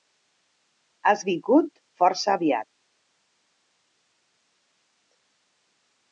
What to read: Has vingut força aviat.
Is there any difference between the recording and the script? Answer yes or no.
no